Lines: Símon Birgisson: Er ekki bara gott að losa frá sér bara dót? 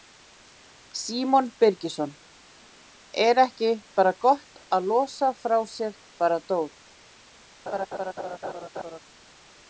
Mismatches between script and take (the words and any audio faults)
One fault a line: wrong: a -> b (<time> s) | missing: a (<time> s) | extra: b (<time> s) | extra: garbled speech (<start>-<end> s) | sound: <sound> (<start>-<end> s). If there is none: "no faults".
sound: laugh (7.7-9.0 s)